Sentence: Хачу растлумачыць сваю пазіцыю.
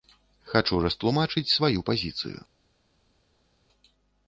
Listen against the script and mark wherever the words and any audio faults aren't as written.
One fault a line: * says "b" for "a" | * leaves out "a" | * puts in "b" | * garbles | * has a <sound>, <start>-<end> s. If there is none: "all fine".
all fine